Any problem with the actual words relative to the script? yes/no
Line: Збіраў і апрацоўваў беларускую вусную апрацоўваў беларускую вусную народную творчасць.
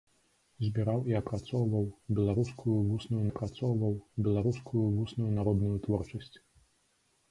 no